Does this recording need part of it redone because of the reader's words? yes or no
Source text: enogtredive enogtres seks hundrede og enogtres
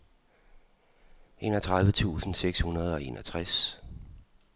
yes